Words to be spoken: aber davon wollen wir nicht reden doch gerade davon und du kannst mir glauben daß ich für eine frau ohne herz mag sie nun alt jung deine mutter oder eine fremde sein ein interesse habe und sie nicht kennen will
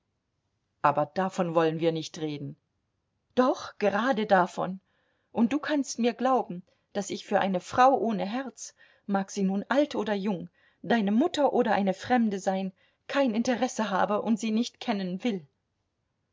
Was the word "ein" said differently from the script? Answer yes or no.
yes